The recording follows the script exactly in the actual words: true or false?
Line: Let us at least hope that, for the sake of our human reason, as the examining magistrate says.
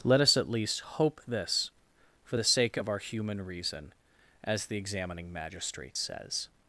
false